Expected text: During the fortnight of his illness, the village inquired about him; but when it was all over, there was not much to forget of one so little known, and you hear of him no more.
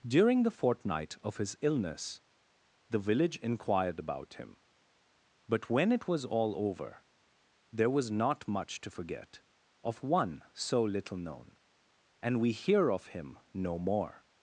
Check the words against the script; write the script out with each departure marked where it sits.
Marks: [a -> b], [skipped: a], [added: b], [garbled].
During the fortnight of his illness, the village inquired about him; but when it was all over, there was not much to forget of one so little known, and [you -> we] hear of him no more.